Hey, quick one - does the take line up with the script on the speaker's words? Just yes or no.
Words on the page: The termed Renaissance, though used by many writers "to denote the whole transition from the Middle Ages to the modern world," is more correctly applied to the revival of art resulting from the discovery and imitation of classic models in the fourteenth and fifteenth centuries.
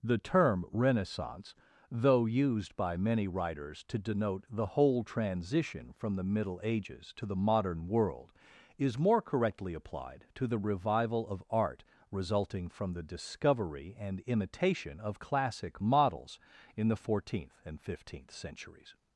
no